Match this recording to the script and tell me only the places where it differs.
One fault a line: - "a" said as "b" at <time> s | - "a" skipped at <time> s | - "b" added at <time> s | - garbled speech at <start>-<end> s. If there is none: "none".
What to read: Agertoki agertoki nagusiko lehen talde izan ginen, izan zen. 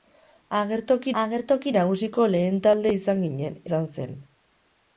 none